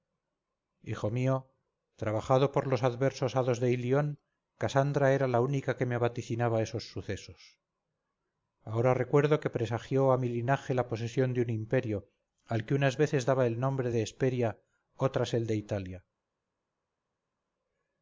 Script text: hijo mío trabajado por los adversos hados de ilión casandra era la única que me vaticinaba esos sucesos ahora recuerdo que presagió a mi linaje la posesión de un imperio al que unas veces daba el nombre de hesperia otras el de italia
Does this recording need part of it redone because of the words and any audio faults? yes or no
no